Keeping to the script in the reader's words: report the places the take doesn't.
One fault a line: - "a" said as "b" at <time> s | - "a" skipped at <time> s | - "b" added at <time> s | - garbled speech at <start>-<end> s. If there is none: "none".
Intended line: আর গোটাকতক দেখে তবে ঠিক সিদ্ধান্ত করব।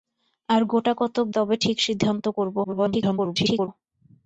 - "দেখে" skipped at 1.3 s
- garbled speech at 2.6-3.7 s